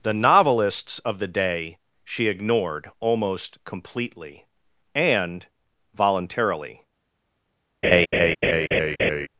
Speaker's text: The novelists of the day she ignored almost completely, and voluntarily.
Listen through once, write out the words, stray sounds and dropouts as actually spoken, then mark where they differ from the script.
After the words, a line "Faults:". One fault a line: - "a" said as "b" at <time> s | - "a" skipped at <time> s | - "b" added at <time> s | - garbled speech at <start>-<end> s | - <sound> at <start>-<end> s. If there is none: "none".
The novelists of the day she ignored almost completely, and voluntarily.
Faults:
- laugh at 7.8-9.3 s